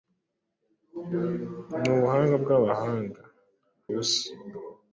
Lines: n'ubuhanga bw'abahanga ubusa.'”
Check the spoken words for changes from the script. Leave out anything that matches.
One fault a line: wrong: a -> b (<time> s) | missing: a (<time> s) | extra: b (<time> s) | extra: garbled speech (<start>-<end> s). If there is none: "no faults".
no faults